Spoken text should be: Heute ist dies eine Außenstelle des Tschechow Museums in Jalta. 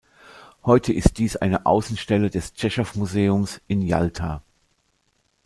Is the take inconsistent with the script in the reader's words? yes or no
no